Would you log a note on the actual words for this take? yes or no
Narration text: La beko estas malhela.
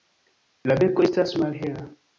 no